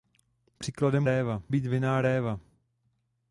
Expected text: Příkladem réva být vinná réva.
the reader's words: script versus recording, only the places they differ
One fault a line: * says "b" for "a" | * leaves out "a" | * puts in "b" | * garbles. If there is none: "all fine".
all fine